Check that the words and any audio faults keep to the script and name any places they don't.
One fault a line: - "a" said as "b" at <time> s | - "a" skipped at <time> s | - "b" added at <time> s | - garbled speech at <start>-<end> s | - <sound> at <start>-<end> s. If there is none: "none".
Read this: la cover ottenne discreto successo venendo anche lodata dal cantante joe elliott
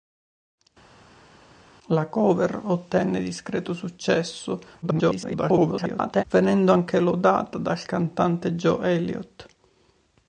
- garbled speech at 4.8-6.2 s